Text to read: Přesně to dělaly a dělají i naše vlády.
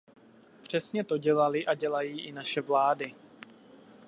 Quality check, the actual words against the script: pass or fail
pass